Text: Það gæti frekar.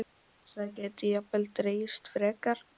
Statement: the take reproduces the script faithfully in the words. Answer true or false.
false